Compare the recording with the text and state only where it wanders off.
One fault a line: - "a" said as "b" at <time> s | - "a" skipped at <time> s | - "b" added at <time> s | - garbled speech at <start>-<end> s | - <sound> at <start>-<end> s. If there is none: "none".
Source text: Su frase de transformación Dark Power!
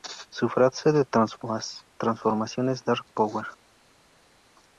- "es" added at 2.7 s